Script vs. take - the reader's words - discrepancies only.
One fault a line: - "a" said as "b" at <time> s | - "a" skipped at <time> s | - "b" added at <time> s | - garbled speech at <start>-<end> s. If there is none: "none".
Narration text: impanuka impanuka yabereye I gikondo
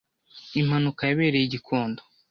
- "impanuka" skipped at 1.0 s